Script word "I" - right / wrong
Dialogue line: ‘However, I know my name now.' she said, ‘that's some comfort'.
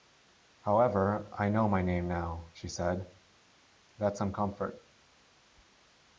right